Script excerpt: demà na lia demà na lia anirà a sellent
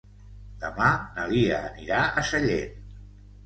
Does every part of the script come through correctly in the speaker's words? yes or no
no